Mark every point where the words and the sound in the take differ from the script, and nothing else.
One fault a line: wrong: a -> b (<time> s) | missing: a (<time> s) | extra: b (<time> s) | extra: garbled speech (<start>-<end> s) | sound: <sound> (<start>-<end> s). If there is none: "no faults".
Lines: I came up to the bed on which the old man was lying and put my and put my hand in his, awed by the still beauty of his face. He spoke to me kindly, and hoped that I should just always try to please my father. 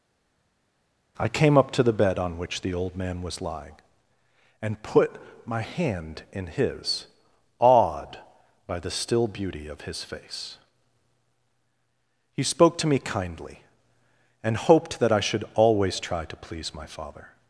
missing: and put my (5.6 s)
missing: just (15.4 s)